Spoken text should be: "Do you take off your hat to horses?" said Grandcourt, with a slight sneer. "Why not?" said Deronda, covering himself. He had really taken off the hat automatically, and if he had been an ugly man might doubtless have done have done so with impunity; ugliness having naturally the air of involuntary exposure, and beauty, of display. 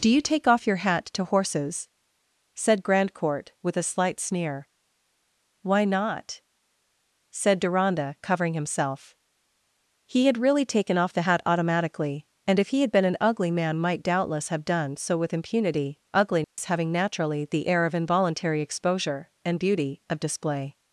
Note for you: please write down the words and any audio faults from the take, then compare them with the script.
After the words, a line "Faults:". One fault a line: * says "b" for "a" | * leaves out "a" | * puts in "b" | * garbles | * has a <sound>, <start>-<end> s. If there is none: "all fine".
"Do you take off your hat to horses?" said Grandcourt, with a slight sneer. "Why not?" said Deronda, covering himself. He had really taken off the hat automatically, and if he had been an ugly man might doubtless have done so with impunity; ugliness having naturally the air of involuntary exposure, and beauty, of display.
Faults:
* leaves out "have done"
* has a dropout, 16.4-16.6 s